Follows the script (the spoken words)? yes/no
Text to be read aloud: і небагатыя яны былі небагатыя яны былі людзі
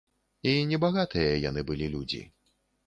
no